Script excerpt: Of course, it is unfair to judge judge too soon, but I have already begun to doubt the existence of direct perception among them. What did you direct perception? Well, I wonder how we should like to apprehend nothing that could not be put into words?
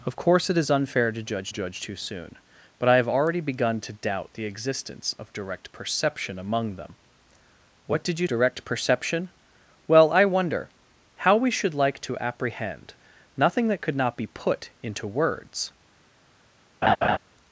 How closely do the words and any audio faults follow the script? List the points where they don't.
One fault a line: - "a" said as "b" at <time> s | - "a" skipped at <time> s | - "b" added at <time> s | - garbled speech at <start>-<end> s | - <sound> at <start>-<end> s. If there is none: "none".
- laugh at 16.8-17.2 s